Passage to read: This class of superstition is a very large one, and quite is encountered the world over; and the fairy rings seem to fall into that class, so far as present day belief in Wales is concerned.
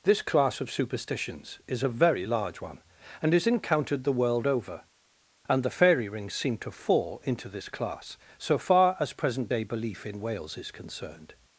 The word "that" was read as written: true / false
false